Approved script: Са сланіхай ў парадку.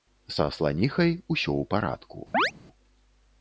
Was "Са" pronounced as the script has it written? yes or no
yes